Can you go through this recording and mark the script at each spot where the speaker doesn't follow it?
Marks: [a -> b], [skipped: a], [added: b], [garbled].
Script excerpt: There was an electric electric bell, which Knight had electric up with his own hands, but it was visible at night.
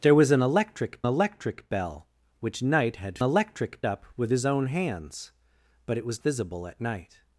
There was an electric electric bell, which Knight had electric up with his own hands, but it was visible at night.